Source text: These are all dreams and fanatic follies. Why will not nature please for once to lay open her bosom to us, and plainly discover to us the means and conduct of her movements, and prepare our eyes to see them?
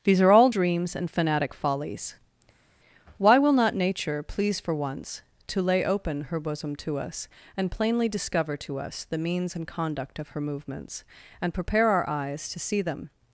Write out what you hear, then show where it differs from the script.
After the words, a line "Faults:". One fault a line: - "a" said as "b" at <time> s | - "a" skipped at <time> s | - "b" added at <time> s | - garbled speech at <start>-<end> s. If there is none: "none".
These are all dreams and fanatic follies. Why will not nature please for once to lay open her bosom to us, and plainly discover to us the means and conduct of her movements, and prepare our eyes to see them?
Faults:
none